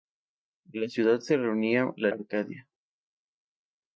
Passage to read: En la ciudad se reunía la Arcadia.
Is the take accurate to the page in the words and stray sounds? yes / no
yes